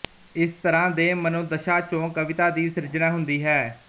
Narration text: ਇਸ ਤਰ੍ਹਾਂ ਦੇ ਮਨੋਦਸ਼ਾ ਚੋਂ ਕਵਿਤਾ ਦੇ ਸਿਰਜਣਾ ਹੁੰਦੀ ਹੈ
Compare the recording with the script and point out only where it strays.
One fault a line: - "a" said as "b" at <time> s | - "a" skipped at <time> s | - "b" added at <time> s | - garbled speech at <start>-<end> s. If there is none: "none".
- "ਦੇ" said as "ਦੀ" at 2.5 s